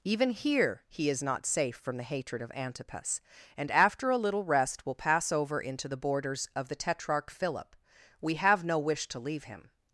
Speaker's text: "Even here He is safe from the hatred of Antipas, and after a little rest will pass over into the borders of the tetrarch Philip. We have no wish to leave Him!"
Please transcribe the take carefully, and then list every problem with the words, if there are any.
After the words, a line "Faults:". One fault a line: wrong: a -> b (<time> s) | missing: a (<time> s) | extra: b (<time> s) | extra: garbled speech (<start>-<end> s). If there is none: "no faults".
"Even here He is not safe from the hatred of Antipas, and after a little rest will pass over into the borders of the tetrarch Philip. We have no wish to leave Him!"
Faults:
extra: not (1.2 s)